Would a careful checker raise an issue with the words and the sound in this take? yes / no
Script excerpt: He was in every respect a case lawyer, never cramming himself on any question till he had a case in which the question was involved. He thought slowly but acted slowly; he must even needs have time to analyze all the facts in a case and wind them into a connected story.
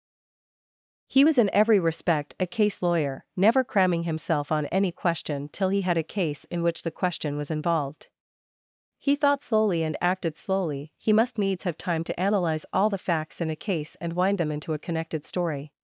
yes